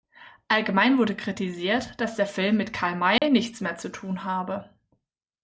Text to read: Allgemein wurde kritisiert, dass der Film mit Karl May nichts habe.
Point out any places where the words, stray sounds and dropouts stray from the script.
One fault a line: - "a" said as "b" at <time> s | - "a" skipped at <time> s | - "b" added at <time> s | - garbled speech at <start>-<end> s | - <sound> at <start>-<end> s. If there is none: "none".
- dropout at 3.2-3.2 s
- "mehr zu tun" added at 3.6 s